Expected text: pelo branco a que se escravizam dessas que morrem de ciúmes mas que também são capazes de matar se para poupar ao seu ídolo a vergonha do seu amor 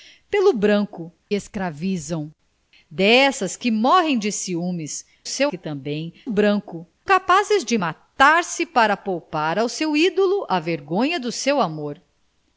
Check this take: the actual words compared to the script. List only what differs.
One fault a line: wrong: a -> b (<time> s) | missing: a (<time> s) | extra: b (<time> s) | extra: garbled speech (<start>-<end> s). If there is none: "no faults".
missing: a que se (1.1 s)
wrong: mas -> seu (5.3 s)
wrong: são -> branco (6.3 s)